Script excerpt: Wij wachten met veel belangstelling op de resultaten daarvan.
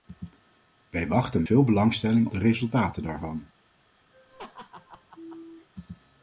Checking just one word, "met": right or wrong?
wrong